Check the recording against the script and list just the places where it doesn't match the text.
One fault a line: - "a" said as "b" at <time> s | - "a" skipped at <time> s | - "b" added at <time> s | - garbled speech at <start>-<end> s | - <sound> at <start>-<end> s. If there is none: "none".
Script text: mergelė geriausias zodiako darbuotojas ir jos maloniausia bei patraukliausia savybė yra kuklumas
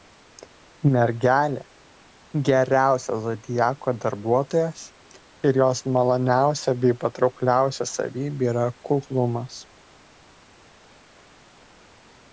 none